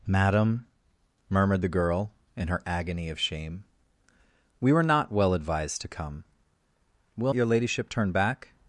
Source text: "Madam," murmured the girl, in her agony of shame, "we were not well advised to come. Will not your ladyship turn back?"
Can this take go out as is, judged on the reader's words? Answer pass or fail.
fail